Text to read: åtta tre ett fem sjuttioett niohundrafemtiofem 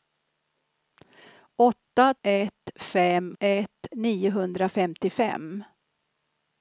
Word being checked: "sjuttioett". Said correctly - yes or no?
no